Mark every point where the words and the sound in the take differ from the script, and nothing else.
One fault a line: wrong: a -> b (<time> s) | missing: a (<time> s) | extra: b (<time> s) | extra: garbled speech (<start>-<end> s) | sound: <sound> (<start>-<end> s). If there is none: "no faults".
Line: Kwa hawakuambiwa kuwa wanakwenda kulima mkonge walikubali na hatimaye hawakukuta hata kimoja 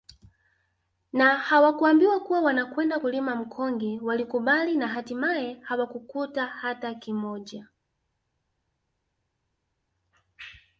wrong: Kwa -> Na (1.1 s)